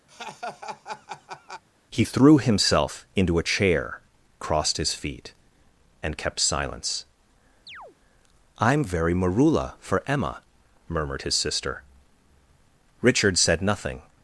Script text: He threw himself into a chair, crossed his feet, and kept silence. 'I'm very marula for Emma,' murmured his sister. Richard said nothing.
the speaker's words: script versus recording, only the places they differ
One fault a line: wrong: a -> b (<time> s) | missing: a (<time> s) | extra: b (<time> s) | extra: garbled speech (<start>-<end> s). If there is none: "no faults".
no faults